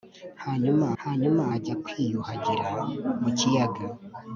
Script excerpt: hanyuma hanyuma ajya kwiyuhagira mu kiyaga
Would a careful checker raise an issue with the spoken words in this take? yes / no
no